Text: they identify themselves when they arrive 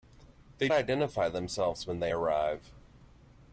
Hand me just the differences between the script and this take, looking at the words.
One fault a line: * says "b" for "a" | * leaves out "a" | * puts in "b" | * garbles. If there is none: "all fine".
all fine